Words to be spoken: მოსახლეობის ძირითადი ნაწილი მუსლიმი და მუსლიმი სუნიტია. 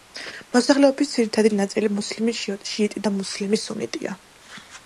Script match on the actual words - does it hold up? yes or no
no